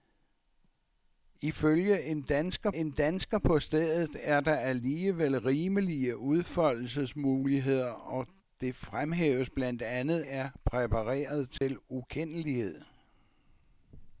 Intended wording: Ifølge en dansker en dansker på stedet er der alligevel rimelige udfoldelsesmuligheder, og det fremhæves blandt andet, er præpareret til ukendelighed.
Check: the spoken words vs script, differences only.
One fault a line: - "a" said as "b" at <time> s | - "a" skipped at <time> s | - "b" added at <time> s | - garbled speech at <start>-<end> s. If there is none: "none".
none